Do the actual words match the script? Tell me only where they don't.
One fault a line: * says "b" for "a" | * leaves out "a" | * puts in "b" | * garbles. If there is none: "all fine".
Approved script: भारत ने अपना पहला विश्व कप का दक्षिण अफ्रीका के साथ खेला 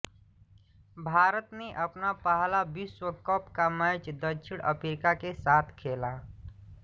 * puts in "मैच"